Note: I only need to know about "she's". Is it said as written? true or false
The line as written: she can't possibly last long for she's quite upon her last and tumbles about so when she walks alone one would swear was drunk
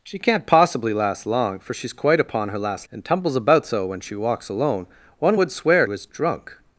true